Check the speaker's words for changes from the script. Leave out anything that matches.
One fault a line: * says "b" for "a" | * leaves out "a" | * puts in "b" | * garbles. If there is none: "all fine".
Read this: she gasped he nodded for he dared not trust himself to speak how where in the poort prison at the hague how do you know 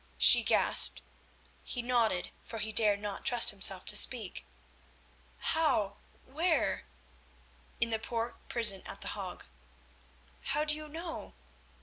all fine